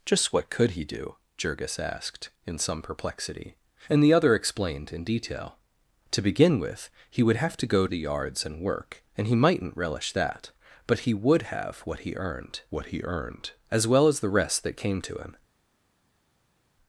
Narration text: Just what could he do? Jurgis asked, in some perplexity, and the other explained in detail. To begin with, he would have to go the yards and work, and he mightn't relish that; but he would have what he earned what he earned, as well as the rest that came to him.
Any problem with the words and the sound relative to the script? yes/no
no